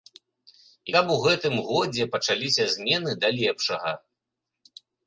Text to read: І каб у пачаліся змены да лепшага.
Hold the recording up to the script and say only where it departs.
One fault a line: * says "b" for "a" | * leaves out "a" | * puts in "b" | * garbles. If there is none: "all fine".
* puts in "гэтым годзе"